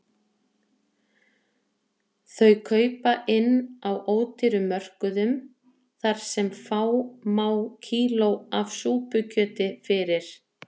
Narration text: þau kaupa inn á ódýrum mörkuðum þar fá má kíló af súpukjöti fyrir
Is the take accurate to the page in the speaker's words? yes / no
no